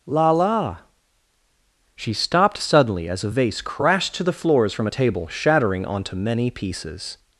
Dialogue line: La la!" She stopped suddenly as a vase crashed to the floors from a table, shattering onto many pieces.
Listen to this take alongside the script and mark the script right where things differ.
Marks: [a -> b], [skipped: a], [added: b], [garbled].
La la!" She stopped suddenly as a vase crashed to the floors from a table, shattering onto many pieces.